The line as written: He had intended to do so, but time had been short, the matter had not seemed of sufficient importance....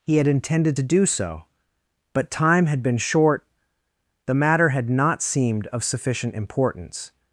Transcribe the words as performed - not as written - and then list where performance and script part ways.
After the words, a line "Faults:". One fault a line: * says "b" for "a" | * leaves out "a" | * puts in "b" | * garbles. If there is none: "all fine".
He had intended to do so, but time had been short, the matter had not seemed of sufficient importance....
Faults:
all fine